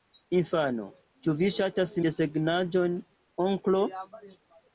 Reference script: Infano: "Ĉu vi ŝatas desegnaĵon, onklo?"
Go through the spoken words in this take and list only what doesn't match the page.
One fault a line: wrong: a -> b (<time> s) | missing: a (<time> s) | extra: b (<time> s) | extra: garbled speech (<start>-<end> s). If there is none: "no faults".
no faults